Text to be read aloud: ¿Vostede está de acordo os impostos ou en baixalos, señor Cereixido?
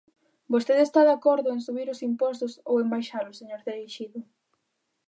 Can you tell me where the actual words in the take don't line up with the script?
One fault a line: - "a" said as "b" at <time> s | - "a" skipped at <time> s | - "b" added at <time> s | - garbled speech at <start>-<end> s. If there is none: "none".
- "en subir" added at 1.5 s